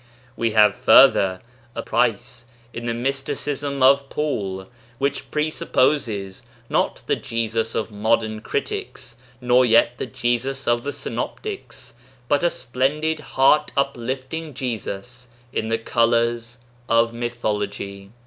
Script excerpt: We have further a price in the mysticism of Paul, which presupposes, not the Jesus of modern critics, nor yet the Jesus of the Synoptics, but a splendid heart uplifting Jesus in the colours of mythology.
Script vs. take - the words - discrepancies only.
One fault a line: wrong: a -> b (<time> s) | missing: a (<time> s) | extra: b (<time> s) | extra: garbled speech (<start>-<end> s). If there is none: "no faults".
no faults